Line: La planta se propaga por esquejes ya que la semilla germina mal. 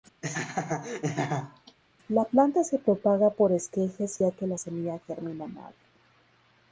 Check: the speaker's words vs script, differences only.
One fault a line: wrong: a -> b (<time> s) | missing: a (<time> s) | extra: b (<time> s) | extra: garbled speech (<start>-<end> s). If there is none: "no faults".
no faults